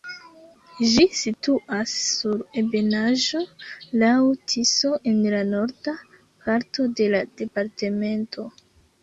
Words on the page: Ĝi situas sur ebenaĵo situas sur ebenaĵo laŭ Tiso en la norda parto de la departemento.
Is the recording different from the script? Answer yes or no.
yes